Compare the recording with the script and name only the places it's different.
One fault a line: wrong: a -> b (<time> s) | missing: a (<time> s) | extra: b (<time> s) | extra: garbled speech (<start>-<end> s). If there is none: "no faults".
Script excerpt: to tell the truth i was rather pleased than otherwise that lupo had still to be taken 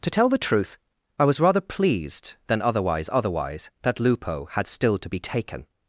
extra: otherwise (3.1 s)